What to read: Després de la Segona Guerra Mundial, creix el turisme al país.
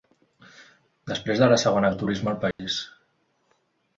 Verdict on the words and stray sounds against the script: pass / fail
fail